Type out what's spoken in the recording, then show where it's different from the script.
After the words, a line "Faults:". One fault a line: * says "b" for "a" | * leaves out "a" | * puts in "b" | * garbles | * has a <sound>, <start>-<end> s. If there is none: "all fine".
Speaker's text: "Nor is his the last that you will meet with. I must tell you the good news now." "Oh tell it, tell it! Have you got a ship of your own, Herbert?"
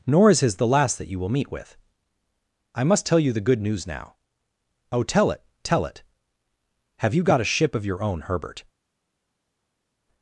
"Nor is his the last that you will meet with. I must tell you the good news now." "Oh tell it, tell it! Have you got a ship of your own, Herbert?"
Faults:
all fine